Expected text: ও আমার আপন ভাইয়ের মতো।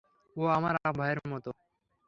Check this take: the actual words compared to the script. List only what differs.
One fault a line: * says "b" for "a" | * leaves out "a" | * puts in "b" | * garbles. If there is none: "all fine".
all fine